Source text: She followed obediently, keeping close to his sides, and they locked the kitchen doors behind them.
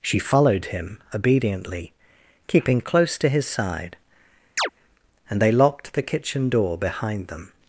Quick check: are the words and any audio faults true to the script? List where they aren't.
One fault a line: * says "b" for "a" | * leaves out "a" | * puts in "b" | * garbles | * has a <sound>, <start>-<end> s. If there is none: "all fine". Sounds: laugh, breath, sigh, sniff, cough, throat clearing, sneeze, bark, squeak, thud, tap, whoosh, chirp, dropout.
* puts in "him"
* says "side" for "sides"
* has a chirp, 4.6-4.7 s
* says "door" for "doors"